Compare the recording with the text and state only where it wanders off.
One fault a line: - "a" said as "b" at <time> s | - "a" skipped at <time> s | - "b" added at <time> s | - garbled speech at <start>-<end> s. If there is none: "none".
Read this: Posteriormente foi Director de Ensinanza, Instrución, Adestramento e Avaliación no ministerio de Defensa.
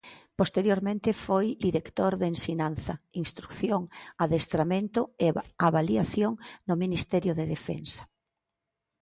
none